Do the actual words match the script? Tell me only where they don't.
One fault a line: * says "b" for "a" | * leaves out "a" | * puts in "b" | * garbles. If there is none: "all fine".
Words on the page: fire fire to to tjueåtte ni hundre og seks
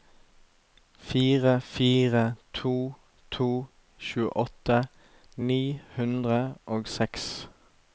all fine